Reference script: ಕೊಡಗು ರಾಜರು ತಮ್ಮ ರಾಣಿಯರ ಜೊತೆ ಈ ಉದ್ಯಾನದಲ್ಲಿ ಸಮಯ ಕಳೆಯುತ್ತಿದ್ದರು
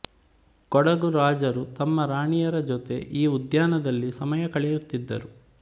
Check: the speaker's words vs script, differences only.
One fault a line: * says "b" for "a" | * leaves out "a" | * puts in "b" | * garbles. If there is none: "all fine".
all fine